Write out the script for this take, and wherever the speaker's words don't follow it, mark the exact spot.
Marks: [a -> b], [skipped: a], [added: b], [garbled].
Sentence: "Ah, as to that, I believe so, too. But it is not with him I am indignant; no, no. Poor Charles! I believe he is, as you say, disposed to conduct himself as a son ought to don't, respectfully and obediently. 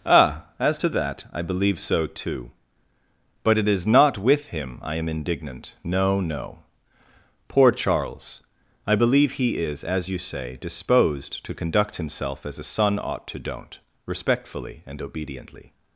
"Ah, as to that, I believe so, too. But it is not with him I am indignant; no, no. Poor Charles! I believe he is, as you say, disposed to conduct himself as a son ought to don't, respectfully and obediently.